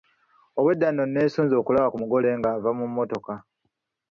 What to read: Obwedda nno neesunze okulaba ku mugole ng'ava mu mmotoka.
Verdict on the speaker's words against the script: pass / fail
pass